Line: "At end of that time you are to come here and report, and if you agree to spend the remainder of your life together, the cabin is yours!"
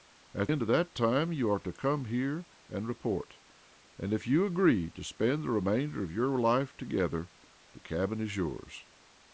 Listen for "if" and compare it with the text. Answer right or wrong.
right